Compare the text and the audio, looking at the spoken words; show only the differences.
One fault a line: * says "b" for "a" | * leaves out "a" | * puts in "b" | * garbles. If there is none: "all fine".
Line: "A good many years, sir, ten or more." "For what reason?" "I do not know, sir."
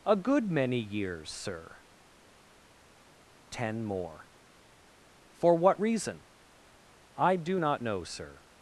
* leaves out "or"